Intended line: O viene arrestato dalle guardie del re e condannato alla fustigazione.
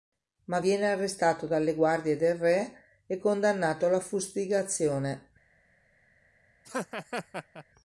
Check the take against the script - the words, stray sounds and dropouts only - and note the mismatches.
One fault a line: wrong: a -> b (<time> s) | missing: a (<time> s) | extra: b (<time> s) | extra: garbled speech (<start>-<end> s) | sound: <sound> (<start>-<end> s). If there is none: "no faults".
wrong: O -> Ma (0.5 s)
sound: laugh (6.6-7.6 s)